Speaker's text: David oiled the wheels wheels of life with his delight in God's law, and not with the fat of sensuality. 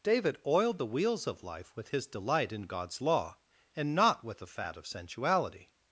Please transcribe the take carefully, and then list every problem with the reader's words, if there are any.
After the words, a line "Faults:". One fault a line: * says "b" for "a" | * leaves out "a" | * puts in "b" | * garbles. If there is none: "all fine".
David oiled the wheels of life with his delight in God's law, and not with the fat of sensuality.
Faults:
* leaves out "wheels"